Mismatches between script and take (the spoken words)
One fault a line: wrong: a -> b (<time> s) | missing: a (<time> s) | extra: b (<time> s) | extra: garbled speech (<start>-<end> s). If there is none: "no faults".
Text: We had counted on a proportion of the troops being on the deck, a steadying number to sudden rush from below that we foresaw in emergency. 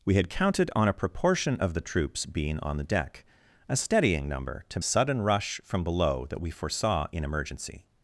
no faults